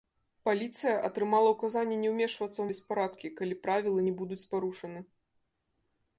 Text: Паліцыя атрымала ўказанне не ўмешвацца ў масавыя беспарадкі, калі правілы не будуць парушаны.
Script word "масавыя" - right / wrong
wrong